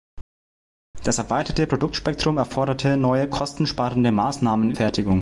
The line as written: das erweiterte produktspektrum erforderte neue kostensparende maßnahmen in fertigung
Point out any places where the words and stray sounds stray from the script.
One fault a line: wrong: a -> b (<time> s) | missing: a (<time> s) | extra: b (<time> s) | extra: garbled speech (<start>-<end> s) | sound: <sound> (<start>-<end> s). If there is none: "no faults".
no faults